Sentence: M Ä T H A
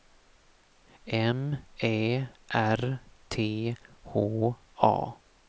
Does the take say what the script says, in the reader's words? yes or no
no